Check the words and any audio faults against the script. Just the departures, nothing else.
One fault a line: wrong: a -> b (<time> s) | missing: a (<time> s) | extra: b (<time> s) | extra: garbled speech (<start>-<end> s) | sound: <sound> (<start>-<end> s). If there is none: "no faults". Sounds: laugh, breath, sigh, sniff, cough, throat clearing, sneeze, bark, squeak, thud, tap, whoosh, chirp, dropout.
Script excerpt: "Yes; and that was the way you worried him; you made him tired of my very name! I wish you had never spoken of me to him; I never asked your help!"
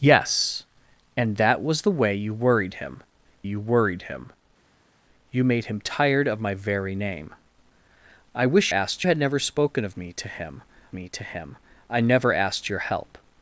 extra: worried him you (3.6 s)
wrong: you -> asked (8.7 s)
extra: me to him (10.9 s)